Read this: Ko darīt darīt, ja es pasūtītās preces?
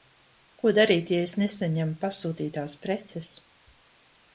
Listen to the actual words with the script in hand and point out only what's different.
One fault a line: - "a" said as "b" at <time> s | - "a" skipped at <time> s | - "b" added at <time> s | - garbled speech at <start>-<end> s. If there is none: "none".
- "darīt" skipped at 1.1 s
- "nesaņemu" added at 1.4 s